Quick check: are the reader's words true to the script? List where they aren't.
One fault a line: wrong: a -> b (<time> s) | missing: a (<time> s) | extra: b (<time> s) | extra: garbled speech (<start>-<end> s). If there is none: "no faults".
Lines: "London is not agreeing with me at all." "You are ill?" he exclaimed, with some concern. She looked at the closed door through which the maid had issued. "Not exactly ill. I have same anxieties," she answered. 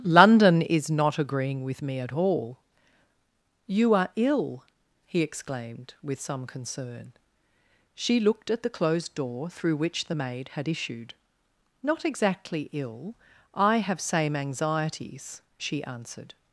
no faults